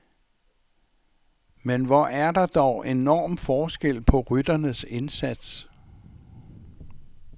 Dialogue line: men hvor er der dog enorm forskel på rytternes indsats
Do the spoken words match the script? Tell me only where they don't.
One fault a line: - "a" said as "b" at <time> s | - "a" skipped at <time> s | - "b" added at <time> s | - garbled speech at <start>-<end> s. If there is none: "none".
none